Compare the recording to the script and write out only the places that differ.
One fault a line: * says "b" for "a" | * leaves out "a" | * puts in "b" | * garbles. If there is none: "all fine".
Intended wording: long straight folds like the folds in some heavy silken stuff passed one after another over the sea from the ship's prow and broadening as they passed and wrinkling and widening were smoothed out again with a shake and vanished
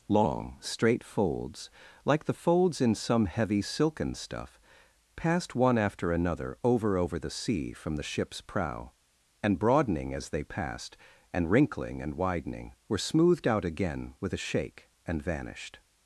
* puts in "over"